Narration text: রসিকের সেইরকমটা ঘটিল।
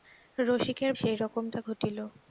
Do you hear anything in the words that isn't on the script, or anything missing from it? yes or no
no